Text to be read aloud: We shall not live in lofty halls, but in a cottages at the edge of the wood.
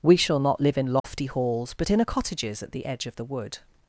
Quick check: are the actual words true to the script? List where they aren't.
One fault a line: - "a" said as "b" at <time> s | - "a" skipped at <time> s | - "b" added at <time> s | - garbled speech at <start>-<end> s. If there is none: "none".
none